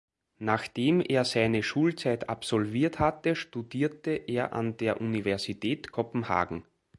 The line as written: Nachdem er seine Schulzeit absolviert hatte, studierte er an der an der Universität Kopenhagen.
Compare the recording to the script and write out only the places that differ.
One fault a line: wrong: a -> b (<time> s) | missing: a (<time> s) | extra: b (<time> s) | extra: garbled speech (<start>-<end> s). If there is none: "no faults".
missing: an der (5.0 s)